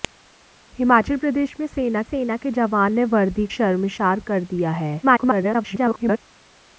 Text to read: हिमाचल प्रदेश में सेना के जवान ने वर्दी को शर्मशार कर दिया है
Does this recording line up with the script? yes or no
no